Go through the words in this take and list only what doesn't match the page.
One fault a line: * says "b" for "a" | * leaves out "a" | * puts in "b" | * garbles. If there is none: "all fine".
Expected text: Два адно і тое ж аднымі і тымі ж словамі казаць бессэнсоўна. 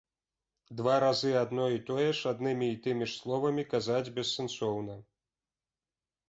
* puts in "разы"